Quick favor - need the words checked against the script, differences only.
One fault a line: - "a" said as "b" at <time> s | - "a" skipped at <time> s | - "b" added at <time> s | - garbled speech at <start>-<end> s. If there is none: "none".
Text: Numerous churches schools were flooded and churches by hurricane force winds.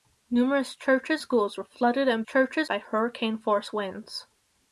none